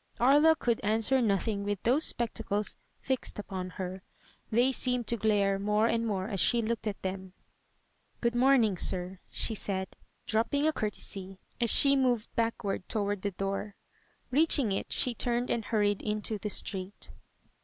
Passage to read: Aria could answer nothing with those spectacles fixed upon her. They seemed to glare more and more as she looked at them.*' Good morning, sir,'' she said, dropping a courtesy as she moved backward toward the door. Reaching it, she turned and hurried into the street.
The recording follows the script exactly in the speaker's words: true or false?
true